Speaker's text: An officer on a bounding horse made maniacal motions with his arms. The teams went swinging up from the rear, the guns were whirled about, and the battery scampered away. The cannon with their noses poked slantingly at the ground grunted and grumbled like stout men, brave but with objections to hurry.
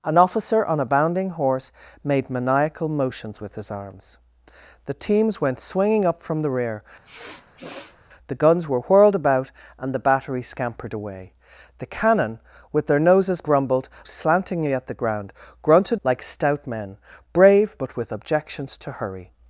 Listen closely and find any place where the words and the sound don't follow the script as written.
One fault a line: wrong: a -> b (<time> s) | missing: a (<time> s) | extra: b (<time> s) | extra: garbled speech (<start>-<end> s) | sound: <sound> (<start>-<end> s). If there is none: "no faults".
sound: sniff (7.0-8.0 s)
wrong: poked -> grumbled (13.4 s)
missing: and grumbled (16.0 s)